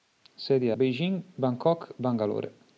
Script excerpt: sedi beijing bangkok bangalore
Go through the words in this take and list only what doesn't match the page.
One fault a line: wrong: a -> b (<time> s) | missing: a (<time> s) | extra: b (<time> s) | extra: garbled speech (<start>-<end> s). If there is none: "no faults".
no faults